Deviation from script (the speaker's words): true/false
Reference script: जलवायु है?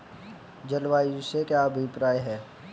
true